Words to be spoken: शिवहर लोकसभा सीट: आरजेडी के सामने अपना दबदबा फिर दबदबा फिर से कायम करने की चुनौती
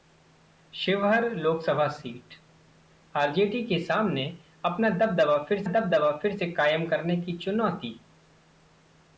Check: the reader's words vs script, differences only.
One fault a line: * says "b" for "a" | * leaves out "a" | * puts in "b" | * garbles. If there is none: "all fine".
all fine